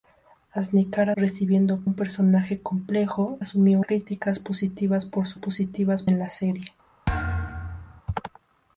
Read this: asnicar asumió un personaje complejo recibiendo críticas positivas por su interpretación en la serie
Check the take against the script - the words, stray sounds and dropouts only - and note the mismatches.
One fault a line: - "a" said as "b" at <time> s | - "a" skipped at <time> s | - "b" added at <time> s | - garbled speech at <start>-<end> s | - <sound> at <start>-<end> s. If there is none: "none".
- "asumió" said as "recibiendo" at 1.1 s
- "recibiendo" said as "asumió" at 3.4 s
- "interpretación" said as "positivas" at 5.3 s
- thud at 7.1-8.0 s